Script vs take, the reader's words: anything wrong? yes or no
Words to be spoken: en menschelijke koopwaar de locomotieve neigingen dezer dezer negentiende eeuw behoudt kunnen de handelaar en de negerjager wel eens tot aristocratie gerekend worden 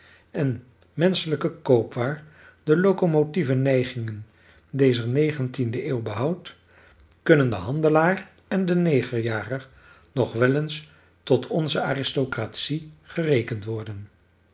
yes